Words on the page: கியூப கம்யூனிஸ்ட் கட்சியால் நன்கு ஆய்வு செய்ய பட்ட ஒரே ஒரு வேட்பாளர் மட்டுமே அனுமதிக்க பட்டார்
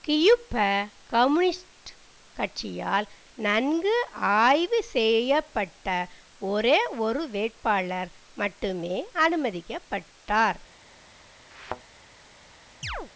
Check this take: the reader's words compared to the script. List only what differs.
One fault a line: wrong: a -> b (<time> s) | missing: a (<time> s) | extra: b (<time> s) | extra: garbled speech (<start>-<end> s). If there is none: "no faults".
no faults